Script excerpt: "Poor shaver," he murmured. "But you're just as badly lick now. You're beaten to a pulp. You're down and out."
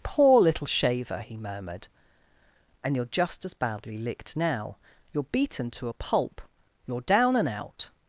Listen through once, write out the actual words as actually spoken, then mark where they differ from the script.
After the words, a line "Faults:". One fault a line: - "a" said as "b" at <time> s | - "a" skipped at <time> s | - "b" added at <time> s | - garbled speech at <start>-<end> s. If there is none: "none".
"Poor little shaver," he murmured. "And you're just as badly licked now. You're beaten to a pulp. You're down and out."
Faults:
- "little" added at 0.4 s
- "But" said as "And" at 2.8 s
- "lick" said as "licked" at 4.0 s